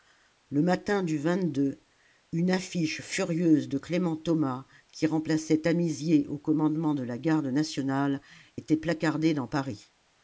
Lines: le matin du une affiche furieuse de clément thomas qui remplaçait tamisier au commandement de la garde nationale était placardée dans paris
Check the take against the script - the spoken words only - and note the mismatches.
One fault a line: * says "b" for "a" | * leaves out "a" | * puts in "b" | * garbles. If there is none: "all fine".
all fine